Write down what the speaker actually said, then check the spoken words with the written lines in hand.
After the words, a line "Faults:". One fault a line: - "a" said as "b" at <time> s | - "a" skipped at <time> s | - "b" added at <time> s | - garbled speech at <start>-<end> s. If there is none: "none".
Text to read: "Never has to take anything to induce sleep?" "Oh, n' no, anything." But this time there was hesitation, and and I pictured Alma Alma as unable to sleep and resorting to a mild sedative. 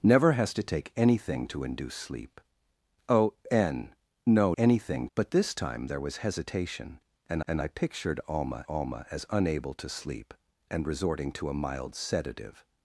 "Never has to take anything to induce sleep?" "Oh, n' no, anything." But this time there was hesitation, and and I pictured Alma Alma as unable to sleep and resorting to a mild sedative.
Faults:
none